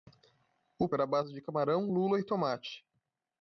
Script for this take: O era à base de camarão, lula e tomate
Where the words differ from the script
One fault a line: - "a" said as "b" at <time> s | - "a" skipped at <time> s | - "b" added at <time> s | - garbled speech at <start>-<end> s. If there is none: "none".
none